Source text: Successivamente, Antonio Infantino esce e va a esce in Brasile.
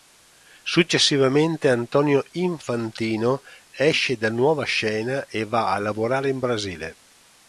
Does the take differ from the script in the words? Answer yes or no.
yes